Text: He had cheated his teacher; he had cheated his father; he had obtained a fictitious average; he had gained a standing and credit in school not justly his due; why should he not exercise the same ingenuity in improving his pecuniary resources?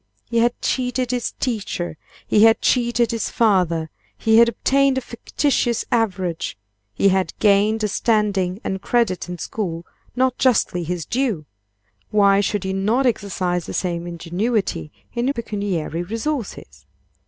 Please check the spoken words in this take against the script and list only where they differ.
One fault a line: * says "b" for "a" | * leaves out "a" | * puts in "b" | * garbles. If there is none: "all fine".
* leaves out "improving his"